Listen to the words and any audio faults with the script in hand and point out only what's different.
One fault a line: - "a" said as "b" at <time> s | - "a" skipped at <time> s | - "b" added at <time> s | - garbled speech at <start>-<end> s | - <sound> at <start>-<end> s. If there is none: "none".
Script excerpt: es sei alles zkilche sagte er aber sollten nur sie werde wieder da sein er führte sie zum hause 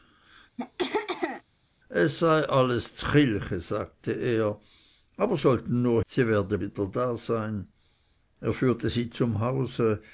- throat clearing at 0.6-1.4 s